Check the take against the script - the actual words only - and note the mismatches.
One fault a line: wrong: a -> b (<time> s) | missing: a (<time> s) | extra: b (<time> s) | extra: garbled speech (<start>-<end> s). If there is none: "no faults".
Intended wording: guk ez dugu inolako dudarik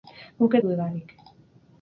missing: dugu inolako (0.6 s)